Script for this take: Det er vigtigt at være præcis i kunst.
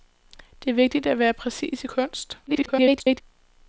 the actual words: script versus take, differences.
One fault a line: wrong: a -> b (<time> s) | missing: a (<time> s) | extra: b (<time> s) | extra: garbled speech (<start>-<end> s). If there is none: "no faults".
extra: garbled speech (2.5-3.2 s)